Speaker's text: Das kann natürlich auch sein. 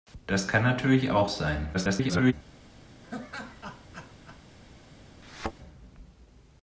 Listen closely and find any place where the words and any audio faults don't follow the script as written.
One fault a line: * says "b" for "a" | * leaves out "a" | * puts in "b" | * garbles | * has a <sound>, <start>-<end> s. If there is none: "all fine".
* garbles
* has a laugh, 3.0-4.4 s
* has a thud, 5.2-5.5 s